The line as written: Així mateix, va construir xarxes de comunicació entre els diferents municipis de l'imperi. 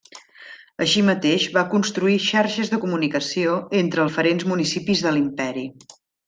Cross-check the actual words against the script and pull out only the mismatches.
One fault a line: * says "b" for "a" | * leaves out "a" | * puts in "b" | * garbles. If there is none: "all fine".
* leaves out "els"